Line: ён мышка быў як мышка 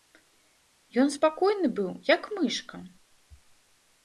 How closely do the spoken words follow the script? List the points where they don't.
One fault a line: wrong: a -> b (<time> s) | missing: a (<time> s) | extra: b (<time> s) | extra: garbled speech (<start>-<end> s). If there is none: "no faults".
wrong: мышка -> спакойны (1.1 s)